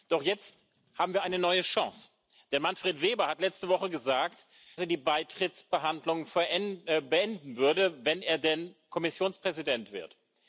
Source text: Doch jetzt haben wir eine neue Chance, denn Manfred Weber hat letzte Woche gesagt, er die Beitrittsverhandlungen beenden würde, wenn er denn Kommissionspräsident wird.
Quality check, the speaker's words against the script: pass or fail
pass